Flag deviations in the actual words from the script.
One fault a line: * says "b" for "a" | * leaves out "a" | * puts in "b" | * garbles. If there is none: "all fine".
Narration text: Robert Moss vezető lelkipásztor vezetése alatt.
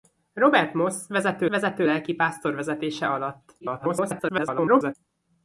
* puts in "vezető"
* garbles